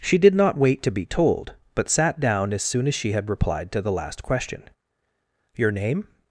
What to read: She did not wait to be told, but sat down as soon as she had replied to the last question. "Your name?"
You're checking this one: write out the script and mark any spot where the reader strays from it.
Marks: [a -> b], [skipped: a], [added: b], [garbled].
She did not wait to be told, but sat down as soon as she had replied to the last question. "Your name?"